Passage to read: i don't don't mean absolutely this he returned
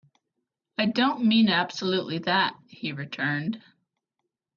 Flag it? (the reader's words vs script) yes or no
yes